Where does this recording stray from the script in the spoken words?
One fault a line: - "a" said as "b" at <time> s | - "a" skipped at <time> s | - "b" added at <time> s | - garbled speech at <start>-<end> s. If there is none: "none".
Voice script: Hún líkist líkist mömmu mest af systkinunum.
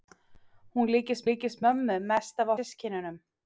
none